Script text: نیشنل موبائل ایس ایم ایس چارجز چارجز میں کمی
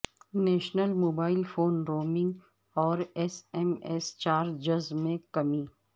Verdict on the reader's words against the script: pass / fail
fail